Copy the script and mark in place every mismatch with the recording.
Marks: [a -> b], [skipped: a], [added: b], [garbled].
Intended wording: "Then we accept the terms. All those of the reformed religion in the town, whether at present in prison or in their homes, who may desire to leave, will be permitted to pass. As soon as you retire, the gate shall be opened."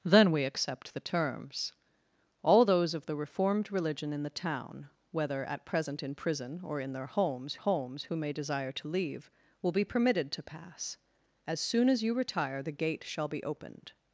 "Then we accept the terms. All those of the reformed religion in the town, whether at present in prison or in their homes, [added: homes] who may desire to leave, will be permitted to pass. As soon as you retire, the gate shall be opened."